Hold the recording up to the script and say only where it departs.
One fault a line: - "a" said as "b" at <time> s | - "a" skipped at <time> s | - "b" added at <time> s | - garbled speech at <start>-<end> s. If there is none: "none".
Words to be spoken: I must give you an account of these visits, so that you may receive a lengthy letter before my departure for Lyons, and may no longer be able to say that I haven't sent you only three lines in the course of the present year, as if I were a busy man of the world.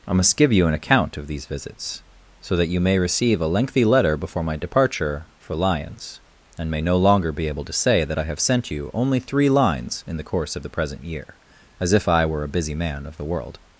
- "haven't" said as "have" at 8.2 s